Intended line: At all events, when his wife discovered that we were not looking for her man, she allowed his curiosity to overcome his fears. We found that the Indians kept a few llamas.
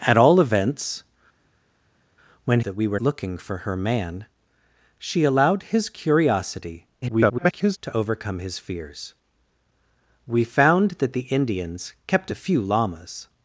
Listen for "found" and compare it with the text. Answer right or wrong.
right